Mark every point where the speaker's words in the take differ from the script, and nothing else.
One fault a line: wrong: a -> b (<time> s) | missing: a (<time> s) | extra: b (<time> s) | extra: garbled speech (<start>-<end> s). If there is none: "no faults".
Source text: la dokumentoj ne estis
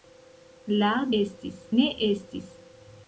wrong: dokumentoj -> estis (1.2 s)